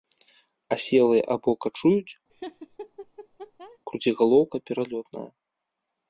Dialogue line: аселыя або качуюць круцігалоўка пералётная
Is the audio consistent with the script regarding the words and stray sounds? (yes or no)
no